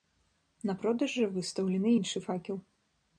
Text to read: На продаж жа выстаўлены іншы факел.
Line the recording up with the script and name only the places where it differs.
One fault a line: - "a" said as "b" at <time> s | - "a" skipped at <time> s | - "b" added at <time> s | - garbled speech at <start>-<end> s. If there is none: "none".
none